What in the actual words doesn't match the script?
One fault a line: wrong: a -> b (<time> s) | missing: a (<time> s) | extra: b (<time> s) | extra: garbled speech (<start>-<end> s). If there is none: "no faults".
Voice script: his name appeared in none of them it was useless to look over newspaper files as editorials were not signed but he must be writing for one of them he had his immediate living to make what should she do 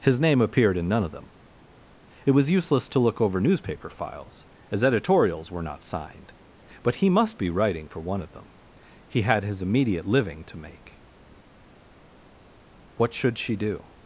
no faults